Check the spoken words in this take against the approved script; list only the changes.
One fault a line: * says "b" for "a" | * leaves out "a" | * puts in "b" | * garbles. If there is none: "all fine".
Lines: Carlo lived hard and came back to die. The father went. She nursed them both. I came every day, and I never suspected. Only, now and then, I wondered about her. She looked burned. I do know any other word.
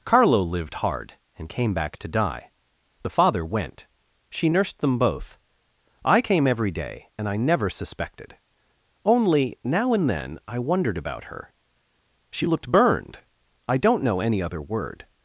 * says "don't" for "do"